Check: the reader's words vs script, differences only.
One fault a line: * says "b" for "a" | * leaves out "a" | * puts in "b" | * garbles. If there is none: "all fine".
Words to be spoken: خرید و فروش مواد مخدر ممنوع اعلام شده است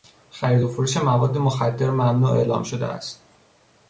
all fine